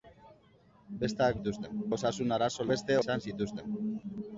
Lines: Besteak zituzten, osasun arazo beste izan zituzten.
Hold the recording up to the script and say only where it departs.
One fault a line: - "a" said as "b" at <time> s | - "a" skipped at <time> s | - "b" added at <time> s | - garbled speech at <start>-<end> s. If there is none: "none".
none